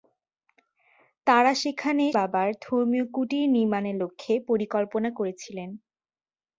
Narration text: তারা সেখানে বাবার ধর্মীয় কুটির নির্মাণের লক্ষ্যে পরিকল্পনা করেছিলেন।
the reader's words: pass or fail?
pass